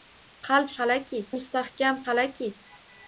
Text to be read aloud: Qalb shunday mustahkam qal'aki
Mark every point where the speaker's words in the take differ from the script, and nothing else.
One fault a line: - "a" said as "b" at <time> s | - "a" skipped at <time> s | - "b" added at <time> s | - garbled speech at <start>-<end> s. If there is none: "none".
- "shunday" said as "qal'aki" at 0.8 s